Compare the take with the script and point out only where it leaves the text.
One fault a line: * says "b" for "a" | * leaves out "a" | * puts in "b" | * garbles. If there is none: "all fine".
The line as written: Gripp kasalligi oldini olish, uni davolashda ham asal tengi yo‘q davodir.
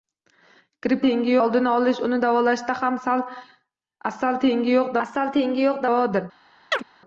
* says "tengi" for "kasalligi"
* puts in "asal tengi yo‘q"